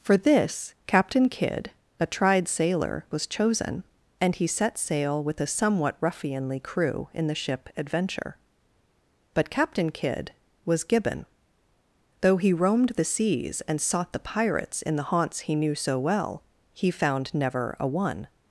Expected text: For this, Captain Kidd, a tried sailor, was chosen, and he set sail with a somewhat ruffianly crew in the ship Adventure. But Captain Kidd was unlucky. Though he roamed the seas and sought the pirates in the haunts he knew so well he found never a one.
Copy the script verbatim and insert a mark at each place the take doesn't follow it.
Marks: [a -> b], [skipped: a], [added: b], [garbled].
For this, Captain Kidd, a tried sailor, was chosen, and he set sail with a somewhat ruffianly crew in the ship Adventure. But Captain Kidd was [unlucky. -> gibbon] Though he roamed the seas and sought the pirates in the haunts he knew so well he found never a one.